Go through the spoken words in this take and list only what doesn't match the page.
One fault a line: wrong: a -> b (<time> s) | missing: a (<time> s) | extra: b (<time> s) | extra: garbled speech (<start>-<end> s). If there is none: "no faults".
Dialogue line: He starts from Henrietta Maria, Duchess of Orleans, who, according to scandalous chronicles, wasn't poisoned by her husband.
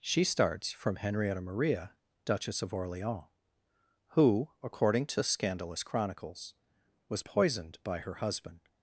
wrong: He -> She (0.0 s)
wrong: wasn't -> was (7.1 s)